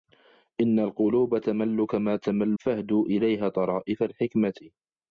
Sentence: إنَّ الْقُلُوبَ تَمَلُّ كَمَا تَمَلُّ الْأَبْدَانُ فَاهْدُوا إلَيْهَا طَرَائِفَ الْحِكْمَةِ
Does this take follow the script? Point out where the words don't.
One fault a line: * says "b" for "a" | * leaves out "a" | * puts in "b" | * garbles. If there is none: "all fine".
* leaves out "الْأَبْدَانُ"